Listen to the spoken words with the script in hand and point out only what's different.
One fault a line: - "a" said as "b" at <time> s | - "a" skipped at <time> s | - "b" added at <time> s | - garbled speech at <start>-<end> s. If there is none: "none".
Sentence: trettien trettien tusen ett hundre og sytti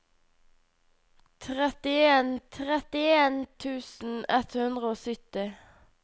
none